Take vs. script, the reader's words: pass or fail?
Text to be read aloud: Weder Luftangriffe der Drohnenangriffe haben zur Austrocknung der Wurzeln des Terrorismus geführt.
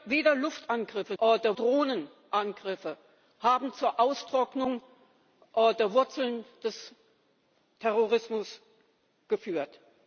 pass